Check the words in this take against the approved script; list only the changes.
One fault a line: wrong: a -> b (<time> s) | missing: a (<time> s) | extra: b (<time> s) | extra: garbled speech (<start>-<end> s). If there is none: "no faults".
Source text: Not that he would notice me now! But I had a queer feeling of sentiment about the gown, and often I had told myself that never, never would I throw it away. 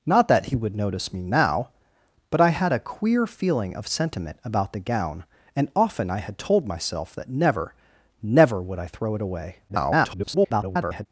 extra: garbled speech (9.7-11.1 s)